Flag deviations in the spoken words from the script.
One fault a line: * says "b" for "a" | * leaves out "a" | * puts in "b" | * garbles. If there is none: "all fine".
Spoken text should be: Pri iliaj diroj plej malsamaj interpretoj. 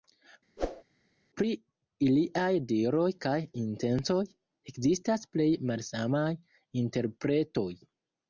* puts in "kaj intencoj ekzistas"